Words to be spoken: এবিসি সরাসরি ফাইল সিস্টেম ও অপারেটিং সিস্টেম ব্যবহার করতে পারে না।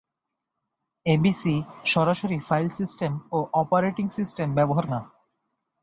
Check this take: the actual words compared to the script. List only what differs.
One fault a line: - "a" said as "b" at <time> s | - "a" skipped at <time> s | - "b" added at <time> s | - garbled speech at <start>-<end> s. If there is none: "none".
- "করতে পারে" skipped at 4.8 s